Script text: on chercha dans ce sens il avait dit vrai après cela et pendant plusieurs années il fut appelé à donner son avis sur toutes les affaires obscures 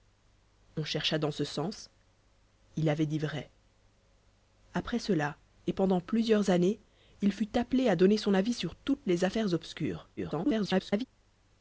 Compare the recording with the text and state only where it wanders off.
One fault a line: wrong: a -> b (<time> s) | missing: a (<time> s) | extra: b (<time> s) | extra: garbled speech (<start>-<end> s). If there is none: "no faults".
extra: garbled speech (10.2-11.0 s)